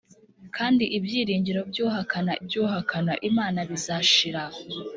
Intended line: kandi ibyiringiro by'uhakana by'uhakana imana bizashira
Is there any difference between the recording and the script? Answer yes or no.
no